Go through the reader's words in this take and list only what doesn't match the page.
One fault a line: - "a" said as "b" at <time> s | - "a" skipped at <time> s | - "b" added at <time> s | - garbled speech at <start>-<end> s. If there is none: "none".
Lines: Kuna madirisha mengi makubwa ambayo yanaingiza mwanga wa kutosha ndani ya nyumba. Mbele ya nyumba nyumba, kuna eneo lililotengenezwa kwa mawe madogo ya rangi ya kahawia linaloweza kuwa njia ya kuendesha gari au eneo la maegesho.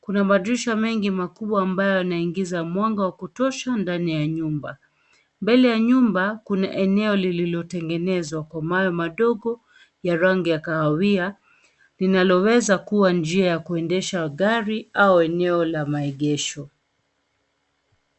- "nyumba" skipped at 6.4 s